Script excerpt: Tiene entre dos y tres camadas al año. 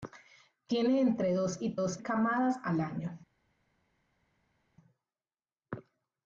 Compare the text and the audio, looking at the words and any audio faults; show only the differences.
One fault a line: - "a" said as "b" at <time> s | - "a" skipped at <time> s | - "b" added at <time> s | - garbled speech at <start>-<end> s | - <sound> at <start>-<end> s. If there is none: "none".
- "tres" said as "dos" at 1.7 s